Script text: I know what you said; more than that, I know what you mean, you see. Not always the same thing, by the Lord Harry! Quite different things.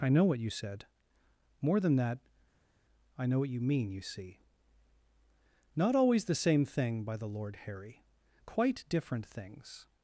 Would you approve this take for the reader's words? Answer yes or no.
yes